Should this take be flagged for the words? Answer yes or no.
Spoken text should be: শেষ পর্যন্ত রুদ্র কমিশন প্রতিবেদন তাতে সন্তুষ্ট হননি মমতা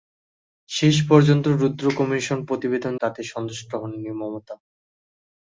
no